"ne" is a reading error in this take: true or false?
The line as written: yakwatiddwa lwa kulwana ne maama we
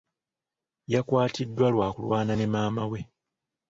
false